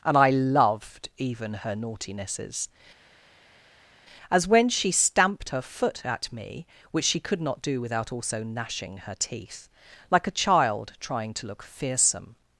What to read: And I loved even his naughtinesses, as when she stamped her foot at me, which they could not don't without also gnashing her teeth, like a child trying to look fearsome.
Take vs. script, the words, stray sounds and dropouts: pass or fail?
fail